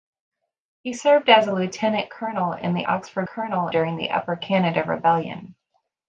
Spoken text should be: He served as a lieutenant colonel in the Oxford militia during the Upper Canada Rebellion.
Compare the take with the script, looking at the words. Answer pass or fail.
fail